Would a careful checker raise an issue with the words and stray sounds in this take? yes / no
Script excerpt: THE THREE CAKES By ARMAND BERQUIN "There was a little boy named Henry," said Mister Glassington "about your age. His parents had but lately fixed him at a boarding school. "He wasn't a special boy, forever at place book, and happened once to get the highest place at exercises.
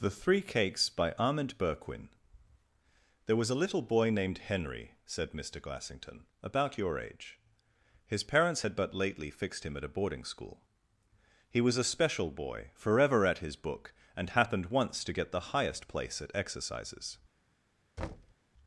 yes